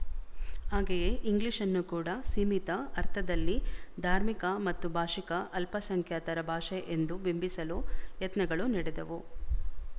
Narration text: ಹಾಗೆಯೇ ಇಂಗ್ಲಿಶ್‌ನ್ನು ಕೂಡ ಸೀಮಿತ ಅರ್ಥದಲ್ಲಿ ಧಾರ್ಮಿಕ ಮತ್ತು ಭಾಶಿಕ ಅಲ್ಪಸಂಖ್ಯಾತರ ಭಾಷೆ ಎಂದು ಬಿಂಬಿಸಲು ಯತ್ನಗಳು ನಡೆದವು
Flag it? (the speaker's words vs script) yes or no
no